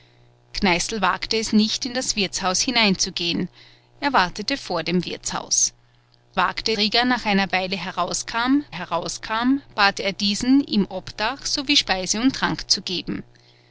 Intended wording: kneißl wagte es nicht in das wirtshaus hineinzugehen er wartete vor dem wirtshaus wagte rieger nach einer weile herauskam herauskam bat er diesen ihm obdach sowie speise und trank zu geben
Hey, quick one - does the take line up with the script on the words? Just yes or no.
yes